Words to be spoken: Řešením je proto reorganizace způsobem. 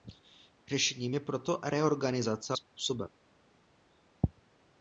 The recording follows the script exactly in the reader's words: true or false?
true